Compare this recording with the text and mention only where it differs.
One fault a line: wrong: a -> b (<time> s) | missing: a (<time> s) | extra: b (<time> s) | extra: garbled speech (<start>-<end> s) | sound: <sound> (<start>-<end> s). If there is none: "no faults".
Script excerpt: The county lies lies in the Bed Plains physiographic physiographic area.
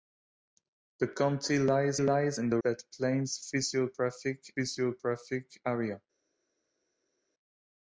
no faults